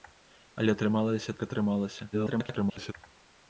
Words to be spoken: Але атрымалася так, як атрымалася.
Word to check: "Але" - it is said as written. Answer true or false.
true